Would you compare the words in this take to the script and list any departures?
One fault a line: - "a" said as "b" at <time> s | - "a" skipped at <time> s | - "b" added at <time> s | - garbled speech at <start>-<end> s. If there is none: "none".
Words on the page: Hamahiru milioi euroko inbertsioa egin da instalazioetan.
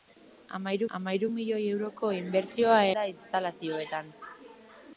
- "hamahiru" added at 1.0 s
- "egin" skipped at 2.8 s